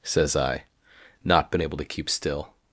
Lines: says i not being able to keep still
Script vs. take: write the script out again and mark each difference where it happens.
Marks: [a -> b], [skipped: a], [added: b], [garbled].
says i not [being -> been] able to keep still